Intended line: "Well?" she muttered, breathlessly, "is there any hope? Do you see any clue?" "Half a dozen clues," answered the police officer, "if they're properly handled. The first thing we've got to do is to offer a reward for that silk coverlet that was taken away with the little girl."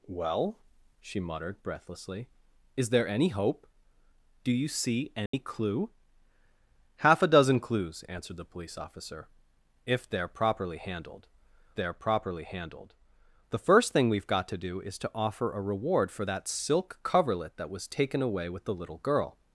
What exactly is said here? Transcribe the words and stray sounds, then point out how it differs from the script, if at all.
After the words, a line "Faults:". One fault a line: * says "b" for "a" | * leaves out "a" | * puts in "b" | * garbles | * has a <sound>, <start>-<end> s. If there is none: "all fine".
"Well?" she muttered, breathlessly, "is there any hope? Do you see any clue?" "Half a dozen clues," answered the police officer, "if they're properly handled they're properly handled. The first thing we've got to do is to offer a reward for that silk coverlet that was taken away with the little girl."
Faults:
* has a dropout, 5.3-5.3 s
* puts in "they're properly handled"